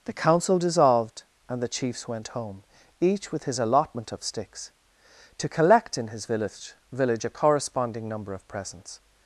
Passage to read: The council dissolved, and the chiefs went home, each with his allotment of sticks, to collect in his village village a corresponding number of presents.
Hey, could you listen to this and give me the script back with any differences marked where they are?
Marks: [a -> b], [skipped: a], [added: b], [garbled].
The council dissolved, and the chiefs went home, each with his allotment of sticks, to collect in his village village a corresponding number of presents.